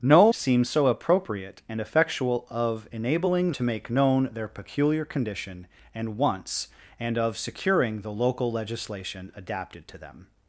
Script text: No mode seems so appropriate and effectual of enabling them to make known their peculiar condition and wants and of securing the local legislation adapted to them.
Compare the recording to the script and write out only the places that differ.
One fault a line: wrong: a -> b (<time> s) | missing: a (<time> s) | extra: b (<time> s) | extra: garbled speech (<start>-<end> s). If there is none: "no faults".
missing: mode (0.3 s)
missing: them (3.5 s)